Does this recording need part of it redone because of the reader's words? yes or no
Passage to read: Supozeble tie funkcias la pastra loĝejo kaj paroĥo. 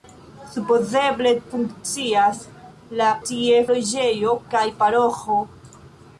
yes